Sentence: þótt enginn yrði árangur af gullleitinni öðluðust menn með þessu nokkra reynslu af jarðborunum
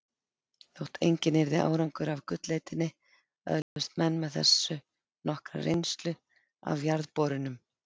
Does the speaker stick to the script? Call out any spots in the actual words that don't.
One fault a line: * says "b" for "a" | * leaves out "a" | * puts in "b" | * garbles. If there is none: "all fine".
all fine